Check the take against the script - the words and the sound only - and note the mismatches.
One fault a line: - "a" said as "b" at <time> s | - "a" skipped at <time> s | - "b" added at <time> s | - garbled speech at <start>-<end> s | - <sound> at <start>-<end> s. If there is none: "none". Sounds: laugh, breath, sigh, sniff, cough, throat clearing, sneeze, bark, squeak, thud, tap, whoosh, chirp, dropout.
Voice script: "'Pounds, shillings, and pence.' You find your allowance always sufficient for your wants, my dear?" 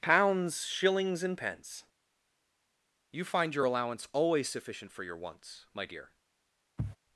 - sniff at 6.8-7.0 s